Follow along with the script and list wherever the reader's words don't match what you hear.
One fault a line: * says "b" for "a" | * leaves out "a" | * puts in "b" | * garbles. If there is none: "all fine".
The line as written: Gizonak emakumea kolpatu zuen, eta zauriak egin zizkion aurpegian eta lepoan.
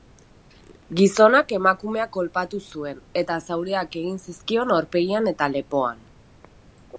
all fine